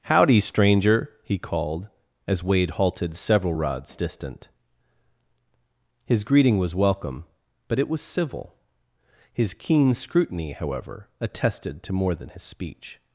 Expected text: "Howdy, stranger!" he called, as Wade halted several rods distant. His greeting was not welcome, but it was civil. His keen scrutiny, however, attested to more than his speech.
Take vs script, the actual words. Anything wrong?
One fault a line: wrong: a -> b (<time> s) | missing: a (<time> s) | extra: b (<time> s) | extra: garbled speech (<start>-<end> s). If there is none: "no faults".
missing: not (6.7 s)